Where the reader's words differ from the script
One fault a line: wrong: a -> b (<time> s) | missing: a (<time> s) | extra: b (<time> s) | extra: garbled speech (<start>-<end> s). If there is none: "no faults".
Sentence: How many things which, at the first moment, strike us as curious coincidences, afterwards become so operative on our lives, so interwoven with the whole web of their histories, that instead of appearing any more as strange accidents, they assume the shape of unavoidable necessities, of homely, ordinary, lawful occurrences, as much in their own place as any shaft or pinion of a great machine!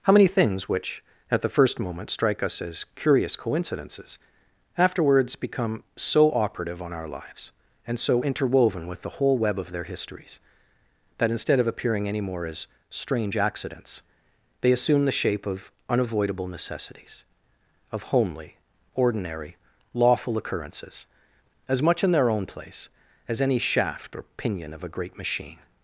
extra: and (7.8 s)